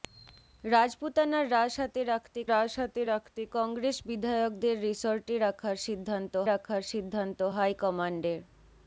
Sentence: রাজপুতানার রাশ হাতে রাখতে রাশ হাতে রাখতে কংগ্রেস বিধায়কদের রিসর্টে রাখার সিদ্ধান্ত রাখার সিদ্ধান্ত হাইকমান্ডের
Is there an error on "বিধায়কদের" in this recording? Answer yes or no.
no